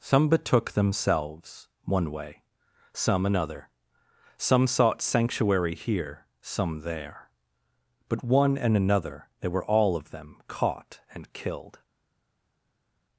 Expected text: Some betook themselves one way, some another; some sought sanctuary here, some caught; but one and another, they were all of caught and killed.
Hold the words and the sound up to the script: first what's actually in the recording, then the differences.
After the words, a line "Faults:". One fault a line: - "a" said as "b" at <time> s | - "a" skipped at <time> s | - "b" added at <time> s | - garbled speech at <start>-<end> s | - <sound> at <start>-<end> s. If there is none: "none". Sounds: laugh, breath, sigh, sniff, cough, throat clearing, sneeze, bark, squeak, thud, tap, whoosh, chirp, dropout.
Some betook themselves one way, some another; some sought sanctuary here, some there; but one and another, they were all of them caught and killed.
Faults:
- "caught" said as "there" at 6.8 s
- "them" added at 10.1 s